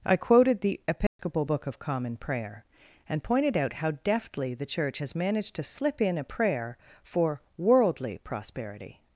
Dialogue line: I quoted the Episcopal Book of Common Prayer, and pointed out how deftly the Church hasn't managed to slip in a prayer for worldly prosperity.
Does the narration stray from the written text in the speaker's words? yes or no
yes